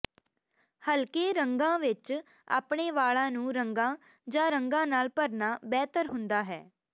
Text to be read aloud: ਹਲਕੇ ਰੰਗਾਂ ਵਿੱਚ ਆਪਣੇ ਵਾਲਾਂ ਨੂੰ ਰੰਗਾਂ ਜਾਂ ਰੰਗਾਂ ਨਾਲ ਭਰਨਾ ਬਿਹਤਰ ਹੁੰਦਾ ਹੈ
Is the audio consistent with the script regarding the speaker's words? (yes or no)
yes